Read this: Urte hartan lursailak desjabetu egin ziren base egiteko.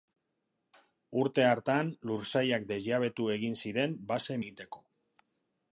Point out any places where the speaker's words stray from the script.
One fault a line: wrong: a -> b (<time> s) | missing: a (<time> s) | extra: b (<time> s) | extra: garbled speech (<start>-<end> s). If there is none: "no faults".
no faults